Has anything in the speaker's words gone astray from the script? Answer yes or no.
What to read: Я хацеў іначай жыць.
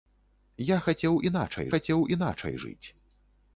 yes